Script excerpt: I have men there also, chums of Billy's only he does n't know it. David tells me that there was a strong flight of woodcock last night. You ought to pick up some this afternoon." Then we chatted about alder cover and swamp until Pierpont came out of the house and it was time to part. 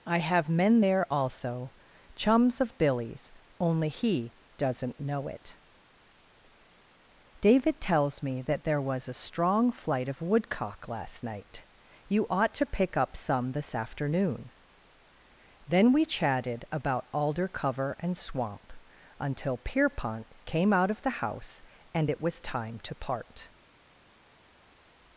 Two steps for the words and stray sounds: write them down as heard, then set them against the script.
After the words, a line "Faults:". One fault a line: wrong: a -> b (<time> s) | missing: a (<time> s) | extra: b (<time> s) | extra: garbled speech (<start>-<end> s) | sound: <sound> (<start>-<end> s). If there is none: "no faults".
I have men there also, chums of Billy's only he does n't know it. David tells me that there was a strong flight of woodcock last night. You ought to pick up some this afternoon." Then we chatted about alder cover and swamp until Pierpont came out of the house and it was time to part.
Faults:
no faults